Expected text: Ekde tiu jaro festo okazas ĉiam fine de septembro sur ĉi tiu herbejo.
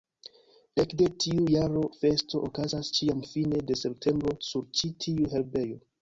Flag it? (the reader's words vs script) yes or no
no